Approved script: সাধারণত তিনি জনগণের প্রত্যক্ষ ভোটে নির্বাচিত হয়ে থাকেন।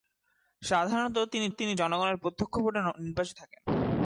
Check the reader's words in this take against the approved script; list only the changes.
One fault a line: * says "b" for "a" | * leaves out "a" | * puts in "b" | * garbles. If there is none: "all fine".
* puts in "তিনি"
* leaves out "হয়ে"